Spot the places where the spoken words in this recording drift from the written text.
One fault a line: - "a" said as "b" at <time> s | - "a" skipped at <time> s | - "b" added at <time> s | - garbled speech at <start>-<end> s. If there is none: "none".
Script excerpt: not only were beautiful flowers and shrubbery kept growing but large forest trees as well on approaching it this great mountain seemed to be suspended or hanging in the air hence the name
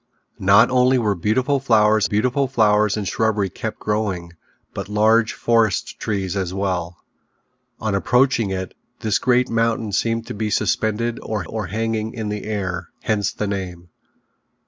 - "beautiful flowers" added at 2.0 s
- "or" added at 11.5 s